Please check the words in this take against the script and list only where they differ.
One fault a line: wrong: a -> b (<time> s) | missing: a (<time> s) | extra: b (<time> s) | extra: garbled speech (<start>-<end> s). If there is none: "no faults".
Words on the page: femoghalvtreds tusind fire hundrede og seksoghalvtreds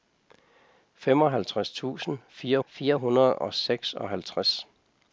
extra: fire (2.7 s)